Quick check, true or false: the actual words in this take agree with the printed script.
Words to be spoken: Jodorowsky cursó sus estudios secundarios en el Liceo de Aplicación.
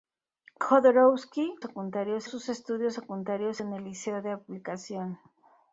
false